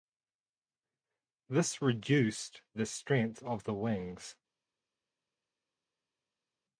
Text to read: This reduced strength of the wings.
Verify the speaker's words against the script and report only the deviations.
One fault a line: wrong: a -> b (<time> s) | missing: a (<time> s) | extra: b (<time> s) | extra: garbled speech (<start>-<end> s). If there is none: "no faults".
extra: the (2.7 s)